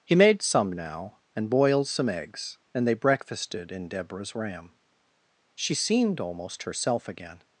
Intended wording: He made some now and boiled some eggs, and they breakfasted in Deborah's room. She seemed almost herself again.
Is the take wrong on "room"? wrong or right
wrong